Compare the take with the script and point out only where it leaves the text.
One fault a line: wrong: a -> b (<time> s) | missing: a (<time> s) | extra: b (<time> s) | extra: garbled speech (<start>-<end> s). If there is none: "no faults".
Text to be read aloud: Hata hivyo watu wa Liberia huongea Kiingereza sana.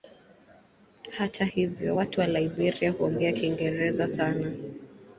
no faults